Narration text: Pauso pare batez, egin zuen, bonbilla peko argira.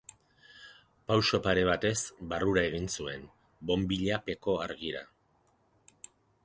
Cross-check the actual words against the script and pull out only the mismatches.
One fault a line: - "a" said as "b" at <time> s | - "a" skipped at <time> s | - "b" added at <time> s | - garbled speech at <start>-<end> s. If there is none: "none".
- "barrura" added at 2.3 s